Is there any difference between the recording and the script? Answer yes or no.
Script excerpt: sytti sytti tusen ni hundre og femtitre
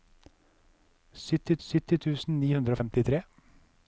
no